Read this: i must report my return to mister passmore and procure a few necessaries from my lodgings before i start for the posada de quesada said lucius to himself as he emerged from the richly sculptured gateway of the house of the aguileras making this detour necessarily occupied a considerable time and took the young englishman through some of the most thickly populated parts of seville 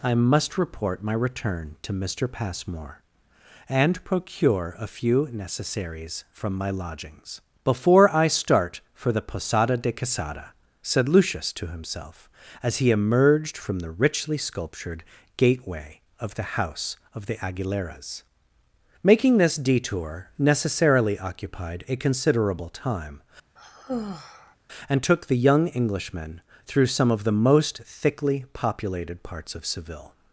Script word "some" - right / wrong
right